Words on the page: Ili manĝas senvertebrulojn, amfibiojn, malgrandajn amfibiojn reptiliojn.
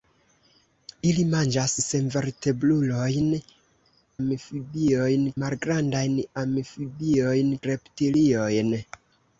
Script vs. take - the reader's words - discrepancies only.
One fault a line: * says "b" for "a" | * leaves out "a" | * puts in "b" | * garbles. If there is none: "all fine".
all fine